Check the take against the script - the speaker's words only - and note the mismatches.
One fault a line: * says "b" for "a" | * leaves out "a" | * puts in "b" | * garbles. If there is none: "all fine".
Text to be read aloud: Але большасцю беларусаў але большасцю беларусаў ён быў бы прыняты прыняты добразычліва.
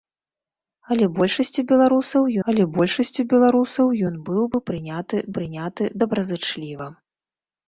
all fine